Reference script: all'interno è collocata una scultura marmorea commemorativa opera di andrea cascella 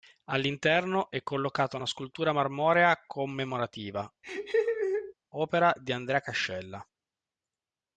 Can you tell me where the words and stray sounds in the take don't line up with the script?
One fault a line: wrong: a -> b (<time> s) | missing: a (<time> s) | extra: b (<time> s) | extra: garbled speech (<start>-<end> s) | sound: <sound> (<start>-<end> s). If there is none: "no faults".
sound: laugh (4.2-5.1 s)